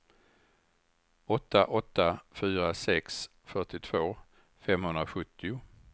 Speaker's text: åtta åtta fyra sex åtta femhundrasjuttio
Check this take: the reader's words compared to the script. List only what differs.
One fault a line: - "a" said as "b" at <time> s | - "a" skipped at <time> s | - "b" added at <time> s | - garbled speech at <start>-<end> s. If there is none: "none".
- "åtta" said as "fyrtiotvå" at 3.4 s